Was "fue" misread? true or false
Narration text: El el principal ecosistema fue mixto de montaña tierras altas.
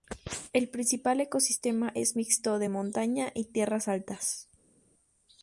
true